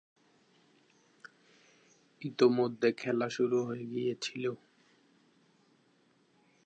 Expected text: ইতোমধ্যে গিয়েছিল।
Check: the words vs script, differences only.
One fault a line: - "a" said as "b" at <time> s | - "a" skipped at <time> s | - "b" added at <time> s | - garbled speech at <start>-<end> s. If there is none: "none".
- "খেলা শুরু হয়ে" added at 2.9 s